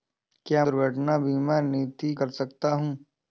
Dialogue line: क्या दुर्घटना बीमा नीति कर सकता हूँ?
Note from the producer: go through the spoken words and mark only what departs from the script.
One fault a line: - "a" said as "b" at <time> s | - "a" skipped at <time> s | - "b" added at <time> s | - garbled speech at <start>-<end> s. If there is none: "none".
none